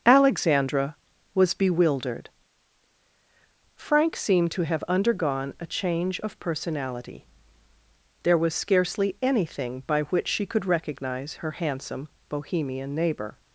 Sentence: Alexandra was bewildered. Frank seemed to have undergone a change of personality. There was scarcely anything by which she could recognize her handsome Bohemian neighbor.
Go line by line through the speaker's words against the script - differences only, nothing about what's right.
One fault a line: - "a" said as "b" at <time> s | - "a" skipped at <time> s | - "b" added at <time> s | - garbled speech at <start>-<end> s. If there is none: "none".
none